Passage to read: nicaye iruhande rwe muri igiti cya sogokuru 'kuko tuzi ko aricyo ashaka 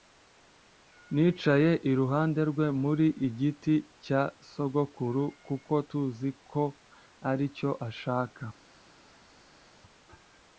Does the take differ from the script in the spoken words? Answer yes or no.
no